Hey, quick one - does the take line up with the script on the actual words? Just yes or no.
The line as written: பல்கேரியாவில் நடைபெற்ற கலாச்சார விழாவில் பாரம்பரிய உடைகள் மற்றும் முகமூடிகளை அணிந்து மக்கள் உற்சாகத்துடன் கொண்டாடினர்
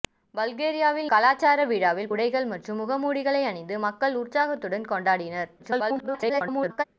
no